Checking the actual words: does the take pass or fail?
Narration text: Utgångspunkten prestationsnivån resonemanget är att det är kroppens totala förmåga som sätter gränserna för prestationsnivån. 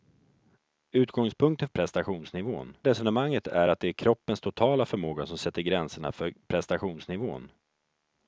pass